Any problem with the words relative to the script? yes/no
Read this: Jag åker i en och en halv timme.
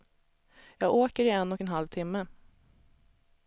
no